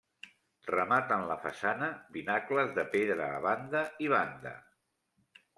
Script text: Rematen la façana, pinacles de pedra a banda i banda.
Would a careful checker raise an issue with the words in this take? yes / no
no